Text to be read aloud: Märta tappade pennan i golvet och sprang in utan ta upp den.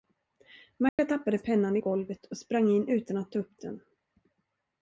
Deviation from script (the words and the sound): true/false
true